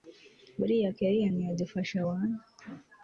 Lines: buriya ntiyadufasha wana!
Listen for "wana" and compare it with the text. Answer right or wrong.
right